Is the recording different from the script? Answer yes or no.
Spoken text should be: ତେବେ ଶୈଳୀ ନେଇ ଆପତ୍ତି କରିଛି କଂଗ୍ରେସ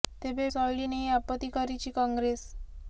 no